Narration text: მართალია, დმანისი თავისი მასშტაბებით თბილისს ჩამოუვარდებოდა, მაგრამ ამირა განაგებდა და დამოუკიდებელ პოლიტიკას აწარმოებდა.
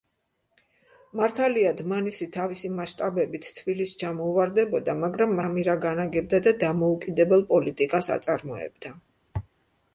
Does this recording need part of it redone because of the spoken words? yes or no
no